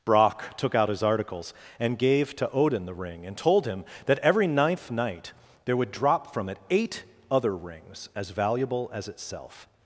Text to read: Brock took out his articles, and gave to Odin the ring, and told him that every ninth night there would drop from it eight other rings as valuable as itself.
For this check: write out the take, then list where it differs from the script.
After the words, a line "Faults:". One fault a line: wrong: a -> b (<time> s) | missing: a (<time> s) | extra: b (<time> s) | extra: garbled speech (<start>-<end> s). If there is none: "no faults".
Brock took out his articles, and gave to Odin the ring, and told him that every ninth night there would drop from it eight other rings as valuable as itself.
Faults:
no faults